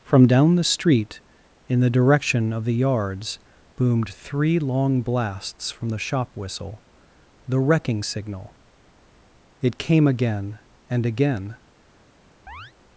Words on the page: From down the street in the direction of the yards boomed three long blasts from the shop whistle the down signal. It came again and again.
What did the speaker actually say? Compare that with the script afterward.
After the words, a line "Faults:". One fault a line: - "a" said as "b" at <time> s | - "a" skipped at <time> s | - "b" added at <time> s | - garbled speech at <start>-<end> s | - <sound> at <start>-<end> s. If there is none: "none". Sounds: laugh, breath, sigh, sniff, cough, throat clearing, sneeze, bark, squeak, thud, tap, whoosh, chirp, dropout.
From down the street in the direction of the yards boomed three long blasts from the shop whistle the wrecking signal. It came again and again.
Faults:
- "down" said as "wrecking" at 7.6 s
- chirp at 12.5-12.7 s